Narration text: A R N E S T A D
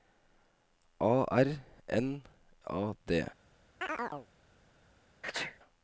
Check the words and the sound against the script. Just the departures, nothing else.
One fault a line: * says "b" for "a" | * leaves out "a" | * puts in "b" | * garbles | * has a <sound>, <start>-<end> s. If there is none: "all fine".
* leaves out "E S T"
* has a chirp, 3.8-4.3 s
* has a sneeze, 5.2-5.6 s